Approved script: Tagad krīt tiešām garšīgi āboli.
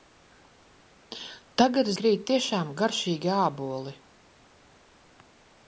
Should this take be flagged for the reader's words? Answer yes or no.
no